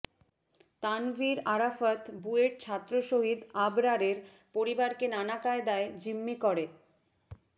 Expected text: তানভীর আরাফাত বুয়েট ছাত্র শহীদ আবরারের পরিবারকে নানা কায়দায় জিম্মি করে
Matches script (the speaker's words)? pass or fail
pass